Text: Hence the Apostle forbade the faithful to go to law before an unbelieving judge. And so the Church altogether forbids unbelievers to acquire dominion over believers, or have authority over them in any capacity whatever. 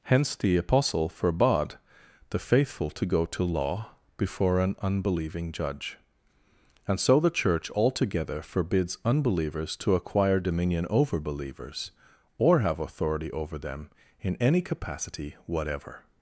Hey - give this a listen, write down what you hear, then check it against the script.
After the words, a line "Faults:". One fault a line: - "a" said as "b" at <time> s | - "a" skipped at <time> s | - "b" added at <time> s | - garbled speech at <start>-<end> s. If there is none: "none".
Hence the Apostle forbade the faithful to go to law before an unbelieving judge. And so the Church altogether forbids unbelievers to acquire dominion over believers, or have authority over them in any capacity whatever.
Faults:
none